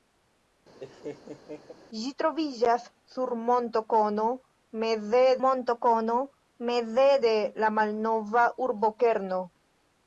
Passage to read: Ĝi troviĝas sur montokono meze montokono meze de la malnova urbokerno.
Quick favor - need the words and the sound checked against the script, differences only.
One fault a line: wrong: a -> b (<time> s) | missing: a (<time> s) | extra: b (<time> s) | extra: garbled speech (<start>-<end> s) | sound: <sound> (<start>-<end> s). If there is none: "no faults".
sound: laugh (0.8-1.7 s)